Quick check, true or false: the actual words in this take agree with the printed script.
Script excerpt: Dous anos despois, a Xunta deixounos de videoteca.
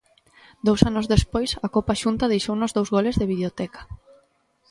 false